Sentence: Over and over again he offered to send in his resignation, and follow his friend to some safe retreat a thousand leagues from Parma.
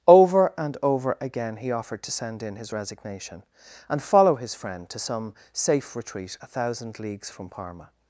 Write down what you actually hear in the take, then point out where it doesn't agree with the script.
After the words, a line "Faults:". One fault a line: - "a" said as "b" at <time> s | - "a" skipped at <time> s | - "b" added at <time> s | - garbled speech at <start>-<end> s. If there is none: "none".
Over and over again he offered to send in his resignation, and follow his friend to some safe retreat a thousand leagues from Parma.
Faults:
none